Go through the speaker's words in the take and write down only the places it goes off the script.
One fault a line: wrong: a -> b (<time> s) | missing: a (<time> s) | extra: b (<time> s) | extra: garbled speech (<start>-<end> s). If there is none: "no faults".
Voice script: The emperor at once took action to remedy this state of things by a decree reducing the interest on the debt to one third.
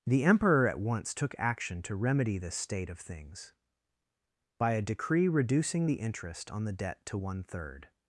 no faults